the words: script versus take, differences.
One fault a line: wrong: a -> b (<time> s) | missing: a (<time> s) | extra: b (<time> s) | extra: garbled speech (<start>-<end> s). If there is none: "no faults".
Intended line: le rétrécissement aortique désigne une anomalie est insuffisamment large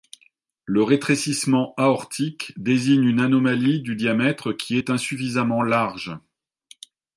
extra: du diamètre qui (3.8 s)